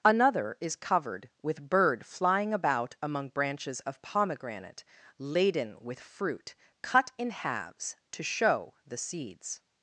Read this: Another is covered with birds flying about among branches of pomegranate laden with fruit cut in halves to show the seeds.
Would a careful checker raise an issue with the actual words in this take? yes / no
yes